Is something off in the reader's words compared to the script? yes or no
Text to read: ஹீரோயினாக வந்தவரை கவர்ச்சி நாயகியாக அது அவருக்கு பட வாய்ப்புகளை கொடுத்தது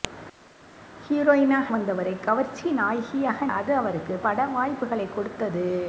no